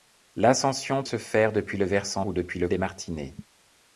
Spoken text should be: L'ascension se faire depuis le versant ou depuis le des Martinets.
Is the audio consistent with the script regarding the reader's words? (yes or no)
yes